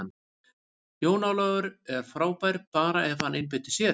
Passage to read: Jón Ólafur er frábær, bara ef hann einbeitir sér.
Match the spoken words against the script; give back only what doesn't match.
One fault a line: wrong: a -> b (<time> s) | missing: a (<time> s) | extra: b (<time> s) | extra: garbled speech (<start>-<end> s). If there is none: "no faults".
no faults